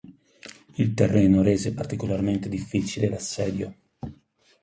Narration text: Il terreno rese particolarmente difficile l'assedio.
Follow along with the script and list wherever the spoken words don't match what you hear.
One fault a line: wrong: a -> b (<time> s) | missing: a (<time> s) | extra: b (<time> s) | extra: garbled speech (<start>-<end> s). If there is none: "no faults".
no faults